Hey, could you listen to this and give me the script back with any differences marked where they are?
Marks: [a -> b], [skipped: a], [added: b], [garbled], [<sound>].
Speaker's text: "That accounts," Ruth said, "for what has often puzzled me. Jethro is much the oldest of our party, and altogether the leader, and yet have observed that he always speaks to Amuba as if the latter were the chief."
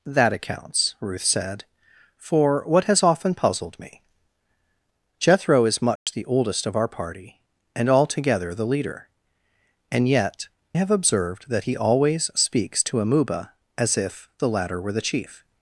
"That accounts," Ruth said, "for what has often puzzled me. Jethro is much [dropout] the oldest of our party, and altogether the leader, and yet have observed that he always speaks to Amuba as if the latter were the chief."